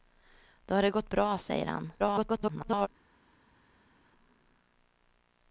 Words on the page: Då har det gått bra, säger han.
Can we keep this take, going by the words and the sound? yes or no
no